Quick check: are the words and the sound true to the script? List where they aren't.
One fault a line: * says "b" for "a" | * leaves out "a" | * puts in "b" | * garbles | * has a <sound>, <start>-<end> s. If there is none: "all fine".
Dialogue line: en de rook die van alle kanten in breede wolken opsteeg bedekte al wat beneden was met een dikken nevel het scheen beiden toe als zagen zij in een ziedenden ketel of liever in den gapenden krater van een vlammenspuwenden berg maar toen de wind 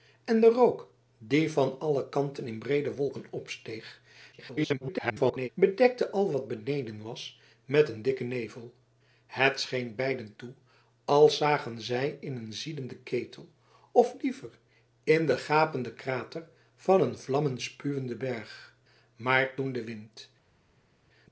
* garbles